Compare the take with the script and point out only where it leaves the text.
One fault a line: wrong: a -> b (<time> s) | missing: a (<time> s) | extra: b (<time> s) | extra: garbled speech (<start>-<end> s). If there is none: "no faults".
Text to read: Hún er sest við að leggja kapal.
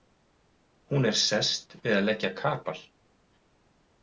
no faults